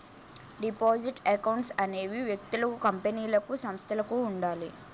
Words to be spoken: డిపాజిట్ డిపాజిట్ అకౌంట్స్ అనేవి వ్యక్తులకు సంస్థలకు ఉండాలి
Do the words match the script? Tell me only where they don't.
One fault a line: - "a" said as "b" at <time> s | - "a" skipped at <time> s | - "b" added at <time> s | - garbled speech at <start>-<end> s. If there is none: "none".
- "డిపాజిట్" skipped at 1.2 s
- "కంపెనీలకు" added at 2.9 s